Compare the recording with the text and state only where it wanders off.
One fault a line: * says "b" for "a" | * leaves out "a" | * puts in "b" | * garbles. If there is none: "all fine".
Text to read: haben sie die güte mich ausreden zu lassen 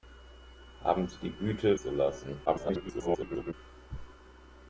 * leaves out "mich ausreden"
* garbles